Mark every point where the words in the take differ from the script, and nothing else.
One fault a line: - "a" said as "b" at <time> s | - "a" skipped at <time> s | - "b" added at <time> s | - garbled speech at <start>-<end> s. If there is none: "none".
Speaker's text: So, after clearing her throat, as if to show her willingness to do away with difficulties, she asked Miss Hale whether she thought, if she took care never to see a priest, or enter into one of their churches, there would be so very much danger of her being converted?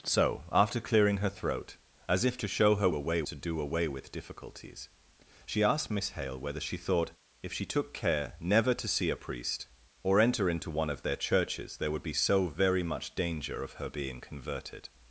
- "willingness" said as "away" at 2.9 s